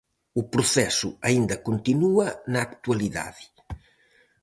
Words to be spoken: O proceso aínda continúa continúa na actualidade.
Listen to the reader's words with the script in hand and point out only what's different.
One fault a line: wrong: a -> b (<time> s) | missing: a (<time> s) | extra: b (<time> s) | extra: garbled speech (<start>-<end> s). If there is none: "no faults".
missing: continúa (2.3 s)